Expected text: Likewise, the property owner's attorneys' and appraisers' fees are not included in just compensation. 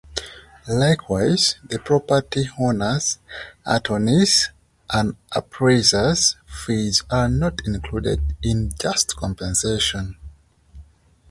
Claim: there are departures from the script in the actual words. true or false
false